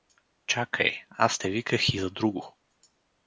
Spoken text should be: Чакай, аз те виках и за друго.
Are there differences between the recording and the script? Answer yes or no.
no